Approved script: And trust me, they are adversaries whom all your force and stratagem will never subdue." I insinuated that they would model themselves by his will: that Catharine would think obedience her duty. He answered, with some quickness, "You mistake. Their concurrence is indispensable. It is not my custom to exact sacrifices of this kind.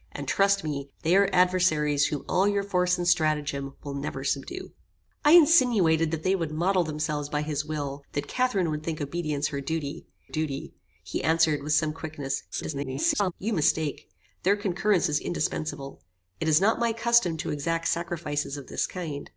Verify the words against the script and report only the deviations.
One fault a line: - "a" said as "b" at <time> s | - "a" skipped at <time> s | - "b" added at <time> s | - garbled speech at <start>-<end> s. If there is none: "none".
- "duty" added at 10.3 s
- garbled speech at 12.5-13.3 s